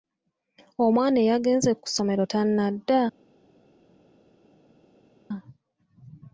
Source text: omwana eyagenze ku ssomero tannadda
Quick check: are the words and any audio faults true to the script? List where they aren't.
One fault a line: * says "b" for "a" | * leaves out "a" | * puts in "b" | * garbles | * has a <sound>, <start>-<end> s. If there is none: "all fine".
all fine